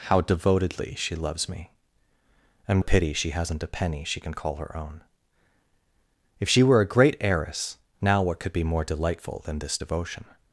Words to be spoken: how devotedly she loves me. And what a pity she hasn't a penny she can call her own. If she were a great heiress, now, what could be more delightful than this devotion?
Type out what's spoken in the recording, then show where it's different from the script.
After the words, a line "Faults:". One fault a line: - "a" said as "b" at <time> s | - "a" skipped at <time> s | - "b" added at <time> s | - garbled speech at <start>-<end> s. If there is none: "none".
how devotedly she loves me. And a pity she hasn't a penny she can call her own. If she were a great heiress, now, what could be more delightful than this devotion?
Faults:
- "what" skipped at 2.8 s